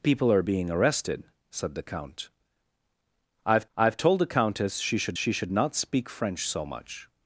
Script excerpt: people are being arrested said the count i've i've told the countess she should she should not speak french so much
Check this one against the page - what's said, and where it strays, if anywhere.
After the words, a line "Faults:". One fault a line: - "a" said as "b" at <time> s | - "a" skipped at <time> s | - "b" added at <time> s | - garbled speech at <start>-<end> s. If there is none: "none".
people are being arrested said the count i've i've told the countess she should she should not speak french so much
Faults:
none